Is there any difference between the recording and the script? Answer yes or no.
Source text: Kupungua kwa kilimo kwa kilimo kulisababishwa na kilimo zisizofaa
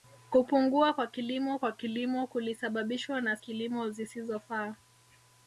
no